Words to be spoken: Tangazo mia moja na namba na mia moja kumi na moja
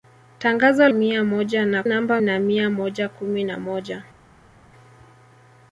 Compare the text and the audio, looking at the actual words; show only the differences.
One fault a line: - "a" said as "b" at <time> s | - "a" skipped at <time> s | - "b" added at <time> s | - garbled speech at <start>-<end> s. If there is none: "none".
none